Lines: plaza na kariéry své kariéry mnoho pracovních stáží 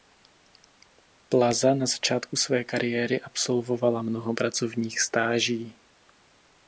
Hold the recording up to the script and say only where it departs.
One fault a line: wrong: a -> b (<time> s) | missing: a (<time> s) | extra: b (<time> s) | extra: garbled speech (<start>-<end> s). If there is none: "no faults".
wrong: kariéry -> začátku (1.9 s)
extra: absolvovala (3.2 s)